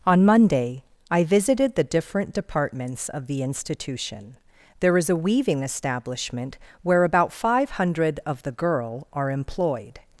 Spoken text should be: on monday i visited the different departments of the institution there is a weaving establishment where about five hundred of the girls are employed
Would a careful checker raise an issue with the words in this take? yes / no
yes